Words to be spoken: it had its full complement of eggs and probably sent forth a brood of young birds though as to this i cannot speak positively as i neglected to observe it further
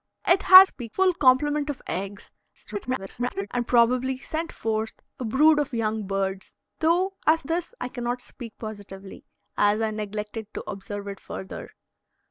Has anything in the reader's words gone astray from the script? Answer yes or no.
yes